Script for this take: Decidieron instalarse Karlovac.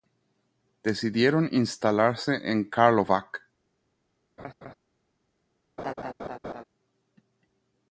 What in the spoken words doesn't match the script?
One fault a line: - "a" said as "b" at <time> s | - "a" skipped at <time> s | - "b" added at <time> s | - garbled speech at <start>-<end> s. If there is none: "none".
- "en" added at 2.5 s